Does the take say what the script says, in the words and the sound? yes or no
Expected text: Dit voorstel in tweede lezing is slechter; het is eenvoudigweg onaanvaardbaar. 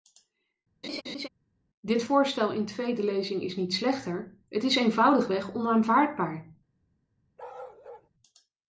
no